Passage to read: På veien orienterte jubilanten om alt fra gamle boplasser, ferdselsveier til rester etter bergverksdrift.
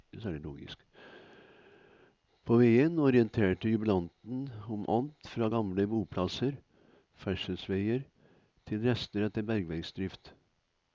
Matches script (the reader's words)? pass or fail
pass